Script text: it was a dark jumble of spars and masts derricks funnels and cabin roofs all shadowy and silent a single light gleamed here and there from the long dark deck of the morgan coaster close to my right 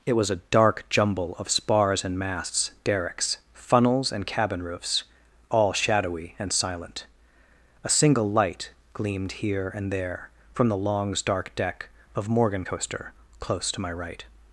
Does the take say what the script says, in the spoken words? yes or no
no